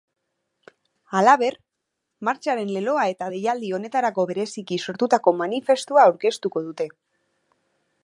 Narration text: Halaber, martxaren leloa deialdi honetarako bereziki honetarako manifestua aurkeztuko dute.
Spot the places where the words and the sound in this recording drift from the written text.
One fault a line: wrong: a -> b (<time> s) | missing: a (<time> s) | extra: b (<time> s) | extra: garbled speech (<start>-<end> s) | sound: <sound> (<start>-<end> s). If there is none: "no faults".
extra: eta (3.1 s)
wrong: honetarako -> sortutako (4.9 s)